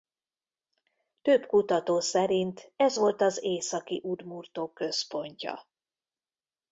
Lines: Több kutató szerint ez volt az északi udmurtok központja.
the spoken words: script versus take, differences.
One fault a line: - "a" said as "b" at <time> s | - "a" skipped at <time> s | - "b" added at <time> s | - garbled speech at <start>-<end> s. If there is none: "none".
none